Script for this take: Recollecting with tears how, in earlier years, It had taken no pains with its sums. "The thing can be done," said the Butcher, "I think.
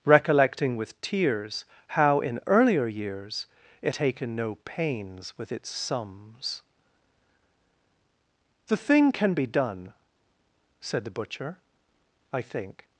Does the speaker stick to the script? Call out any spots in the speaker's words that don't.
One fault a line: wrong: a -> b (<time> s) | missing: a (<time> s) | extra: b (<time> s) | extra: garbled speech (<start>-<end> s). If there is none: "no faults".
missing: had (4.0 s)